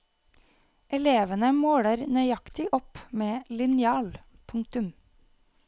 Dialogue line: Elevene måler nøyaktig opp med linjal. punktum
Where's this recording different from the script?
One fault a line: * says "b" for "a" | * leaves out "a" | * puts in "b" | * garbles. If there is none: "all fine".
all fine